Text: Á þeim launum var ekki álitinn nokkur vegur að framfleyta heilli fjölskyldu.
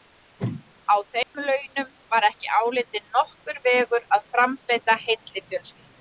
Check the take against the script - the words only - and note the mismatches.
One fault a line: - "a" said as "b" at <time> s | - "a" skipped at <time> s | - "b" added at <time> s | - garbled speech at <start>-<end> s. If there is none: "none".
none